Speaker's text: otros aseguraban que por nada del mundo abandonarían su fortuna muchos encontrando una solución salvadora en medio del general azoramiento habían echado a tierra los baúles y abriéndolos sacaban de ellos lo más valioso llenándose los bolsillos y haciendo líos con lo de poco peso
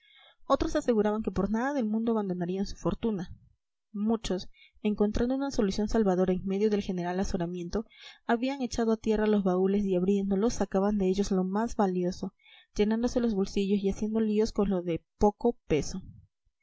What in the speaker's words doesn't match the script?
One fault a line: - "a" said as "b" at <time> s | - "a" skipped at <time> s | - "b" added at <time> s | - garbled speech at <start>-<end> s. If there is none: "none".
none